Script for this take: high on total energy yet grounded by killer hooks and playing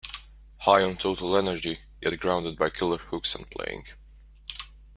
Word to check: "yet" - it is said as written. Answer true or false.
true